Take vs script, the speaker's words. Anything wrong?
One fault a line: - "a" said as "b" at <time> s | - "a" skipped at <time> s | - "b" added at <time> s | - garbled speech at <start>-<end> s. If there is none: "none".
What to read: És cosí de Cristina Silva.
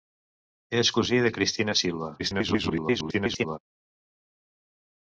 - garbled speech at 2.2-3.6 s